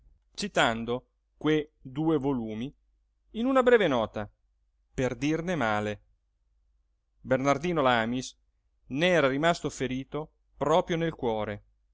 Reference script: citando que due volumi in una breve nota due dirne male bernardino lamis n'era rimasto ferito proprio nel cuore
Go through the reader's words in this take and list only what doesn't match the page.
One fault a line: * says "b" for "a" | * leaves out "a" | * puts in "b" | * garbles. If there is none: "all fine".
* says "per" for "due"